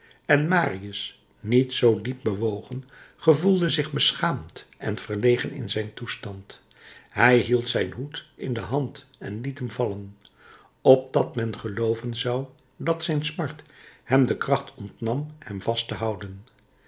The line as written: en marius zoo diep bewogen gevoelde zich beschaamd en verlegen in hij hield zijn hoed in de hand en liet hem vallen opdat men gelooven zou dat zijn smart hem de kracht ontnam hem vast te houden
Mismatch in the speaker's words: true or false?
true